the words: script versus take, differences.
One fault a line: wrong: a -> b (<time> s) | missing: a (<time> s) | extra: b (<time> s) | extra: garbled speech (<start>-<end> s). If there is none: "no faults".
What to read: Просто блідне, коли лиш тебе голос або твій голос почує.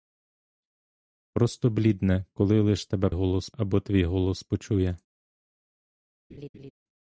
no faults